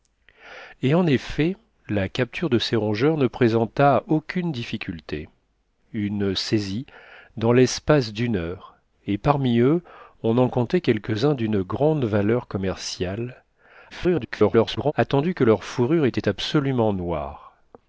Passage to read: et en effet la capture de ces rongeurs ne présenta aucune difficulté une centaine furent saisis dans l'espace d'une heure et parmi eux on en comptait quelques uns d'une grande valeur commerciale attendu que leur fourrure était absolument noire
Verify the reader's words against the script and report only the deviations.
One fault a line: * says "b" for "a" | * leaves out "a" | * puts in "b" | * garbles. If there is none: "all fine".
* leaves out "centaine furent"
* garbles